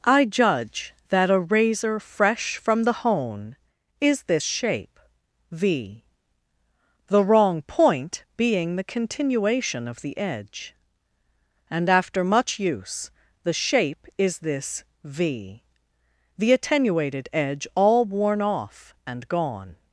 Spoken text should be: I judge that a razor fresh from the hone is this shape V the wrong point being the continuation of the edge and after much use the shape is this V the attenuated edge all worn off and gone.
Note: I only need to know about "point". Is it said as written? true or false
true